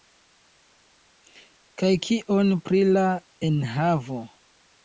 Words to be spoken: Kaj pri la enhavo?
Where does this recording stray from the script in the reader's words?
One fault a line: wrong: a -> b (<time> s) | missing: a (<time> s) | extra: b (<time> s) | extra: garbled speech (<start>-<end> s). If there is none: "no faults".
extra: kion (2.1 s)